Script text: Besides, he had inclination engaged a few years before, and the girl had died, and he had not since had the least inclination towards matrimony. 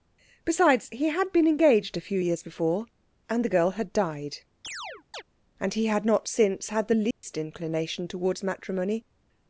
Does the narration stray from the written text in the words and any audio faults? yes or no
yes